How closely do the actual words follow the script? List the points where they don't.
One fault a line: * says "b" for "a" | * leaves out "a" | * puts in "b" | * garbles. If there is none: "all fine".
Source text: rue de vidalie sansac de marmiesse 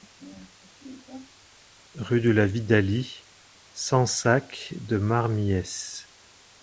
* puts in "la"